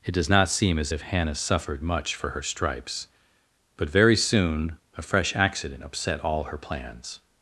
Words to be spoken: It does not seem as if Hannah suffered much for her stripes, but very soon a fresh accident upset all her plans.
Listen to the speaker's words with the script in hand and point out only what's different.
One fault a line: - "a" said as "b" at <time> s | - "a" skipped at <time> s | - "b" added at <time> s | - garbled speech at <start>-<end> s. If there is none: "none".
none